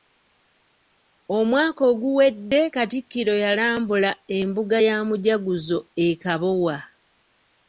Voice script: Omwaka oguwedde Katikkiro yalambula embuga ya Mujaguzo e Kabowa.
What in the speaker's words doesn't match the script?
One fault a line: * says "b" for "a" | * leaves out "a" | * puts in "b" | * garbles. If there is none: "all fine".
all fine